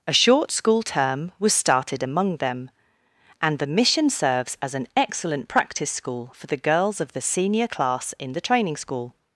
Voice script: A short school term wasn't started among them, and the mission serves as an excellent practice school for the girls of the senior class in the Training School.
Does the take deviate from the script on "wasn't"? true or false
true